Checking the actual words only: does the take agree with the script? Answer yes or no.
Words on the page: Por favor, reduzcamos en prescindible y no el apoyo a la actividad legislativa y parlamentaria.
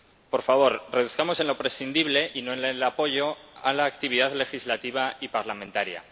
no